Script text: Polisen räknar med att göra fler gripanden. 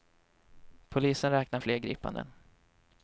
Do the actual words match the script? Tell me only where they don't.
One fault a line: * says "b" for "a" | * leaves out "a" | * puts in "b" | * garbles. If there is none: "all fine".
* leaves out "med att göra"